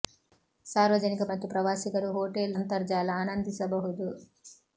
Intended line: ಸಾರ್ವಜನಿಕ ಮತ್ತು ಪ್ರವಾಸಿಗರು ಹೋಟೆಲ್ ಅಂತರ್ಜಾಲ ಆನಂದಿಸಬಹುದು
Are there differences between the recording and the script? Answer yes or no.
no